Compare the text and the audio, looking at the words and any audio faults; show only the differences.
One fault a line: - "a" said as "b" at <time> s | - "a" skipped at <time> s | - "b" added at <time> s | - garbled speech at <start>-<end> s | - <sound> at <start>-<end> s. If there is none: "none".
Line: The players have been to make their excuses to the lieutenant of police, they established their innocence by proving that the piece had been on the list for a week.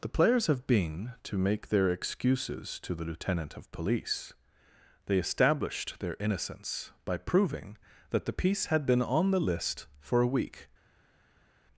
none